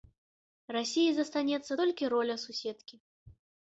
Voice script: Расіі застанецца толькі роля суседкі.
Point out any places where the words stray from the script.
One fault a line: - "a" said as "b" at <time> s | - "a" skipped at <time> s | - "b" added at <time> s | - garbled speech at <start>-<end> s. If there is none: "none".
none